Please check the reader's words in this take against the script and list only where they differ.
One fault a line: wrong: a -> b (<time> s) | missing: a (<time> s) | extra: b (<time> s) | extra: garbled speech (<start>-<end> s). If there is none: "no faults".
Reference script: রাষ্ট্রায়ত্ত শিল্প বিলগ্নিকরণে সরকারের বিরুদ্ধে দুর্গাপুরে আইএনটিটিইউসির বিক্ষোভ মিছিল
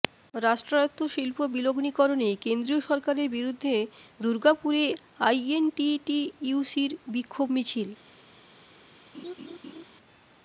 extra: কেন্দ্রীয় (2.4 s)